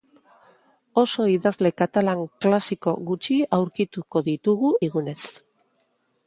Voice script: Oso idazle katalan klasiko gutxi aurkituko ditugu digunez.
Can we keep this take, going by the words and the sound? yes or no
yes